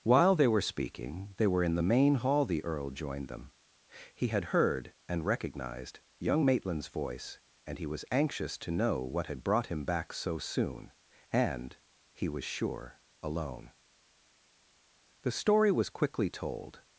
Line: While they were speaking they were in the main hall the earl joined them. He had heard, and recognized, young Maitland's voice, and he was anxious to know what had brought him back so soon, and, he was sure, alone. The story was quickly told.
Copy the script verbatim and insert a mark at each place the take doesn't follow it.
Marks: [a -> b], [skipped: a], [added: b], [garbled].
While they were speaking they were in the main hall the earl joined them. He had heard, and recognized, young Maitland's voice, and he was anxious to know what had brought him back so soon, and, he was sure, alone. The story was quickly told.